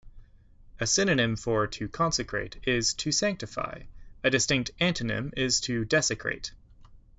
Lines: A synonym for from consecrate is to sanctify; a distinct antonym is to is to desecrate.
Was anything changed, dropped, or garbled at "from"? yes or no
yes